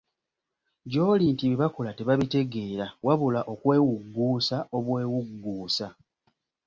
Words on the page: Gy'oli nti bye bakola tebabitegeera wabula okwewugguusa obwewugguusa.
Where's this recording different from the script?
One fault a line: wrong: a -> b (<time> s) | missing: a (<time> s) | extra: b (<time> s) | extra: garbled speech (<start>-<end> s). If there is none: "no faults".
no faults